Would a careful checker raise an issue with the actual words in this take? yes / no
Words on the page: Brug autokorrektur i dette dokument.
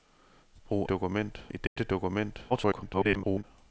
yes